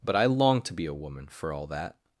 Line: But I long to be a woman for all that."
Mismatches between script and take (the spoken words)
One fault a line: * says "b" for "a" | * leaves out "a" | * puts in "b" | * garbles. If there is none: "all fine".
all fine